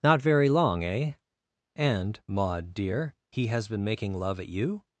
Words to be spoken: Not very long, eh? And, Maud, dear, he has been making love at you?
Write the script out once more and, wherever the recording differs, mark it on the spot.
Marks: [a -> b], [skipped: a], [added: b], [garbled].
Not very long, eh? And, Maud, dear, he has been making love at you?